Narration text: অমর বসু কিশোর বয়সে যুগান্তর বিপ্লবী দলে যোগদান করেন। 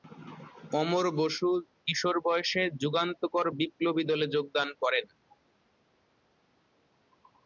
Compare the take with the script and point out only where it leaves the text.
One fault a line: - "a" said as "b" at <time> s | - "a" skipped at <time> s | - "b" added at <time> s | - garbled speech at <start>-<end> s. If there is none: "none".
none